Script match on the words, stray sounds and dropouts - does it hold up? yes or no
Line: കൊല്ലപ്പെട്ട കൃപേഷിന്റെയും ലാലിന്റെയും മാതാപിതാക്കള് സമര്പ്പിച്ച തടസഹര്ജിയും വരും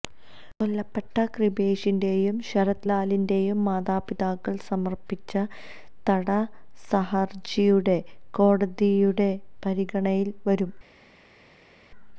no